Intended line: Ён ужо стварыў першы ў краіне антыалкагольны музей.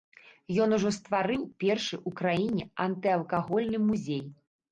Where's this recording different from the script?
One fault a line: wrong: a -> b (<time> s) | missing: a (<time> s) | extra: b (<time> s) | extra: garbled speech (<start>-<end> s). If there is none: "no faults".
no faults